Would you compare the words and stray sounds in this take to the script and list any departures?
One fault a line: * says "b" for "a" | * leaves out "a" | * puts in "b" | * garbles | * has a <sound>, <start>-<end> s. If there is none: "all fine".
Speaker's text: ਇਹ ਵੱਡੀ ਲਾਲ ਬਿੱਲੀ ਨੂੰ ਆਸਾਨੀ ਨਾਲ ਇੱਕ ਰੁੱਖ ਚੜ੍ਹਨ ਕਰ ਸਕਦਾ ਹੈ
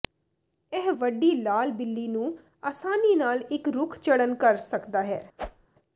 * has a whoosh, 5.4-5.7 s